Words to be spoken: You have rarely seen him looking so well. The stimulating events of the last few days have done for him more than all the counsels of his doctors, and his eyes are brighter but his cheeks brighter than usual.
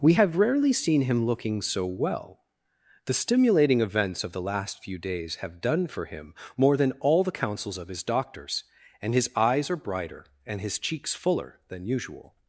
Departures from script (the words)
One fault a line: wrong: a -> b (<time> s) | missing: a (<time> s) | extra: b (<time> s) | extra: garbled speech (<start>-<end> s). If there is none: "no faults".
wrong: You -> We (0.0 s)
wrong: but -> and (10.5 s)
wrong: brighter -> fuller (11.1 s)